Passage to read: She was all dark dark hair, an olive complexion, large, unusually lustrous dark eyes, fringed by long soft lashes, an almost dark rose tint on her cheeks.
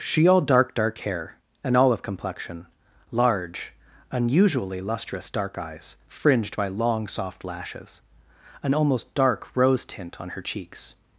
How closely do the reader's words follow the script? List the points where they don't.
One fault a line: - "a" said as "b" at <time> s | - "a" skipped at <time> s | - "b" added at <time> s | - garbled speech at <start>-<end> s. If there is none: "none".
- "was" skipped at 0.3 s